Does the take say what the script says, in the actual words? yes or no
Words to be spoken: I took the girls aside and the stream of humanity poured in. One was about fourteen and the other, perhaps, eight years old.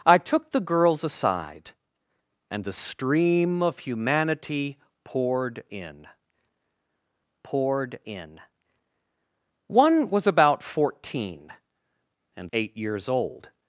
no